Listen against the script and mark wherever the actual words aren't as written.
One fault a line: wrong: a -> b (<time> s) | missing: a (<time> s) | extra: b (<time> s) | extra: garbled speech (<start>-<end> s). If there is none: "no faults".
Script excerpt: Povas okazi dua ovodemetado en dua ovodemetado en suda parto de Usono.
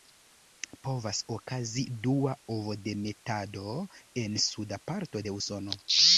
missing: dua ovodemetado en (4.4 s)